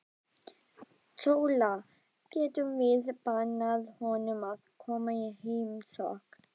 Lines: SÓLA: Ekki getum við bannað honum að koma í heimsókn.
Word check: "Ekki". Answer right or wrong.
wrong